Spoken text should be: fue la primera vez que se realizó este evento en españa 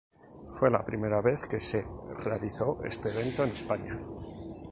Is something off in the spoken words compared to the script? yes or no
no